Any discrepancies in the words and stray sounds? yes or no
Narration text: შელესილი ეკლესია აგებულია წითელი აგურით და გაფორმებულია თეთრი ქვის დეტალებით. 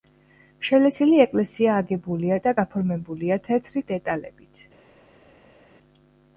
yes